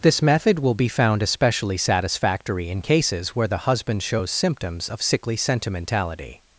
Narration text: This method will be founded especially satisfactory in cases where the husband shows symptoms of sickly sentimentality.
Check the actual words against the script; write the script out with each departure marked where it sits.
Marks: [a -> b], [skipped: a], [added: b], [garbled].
This method will be [founded -> found] especially satisfactory in cases where the husband shows symptoms of sickly sentimentality.